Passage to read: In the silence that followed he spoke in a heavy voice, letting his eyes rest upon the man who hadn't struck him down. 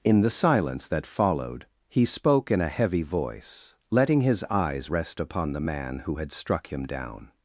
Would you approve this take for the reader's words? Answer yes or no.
no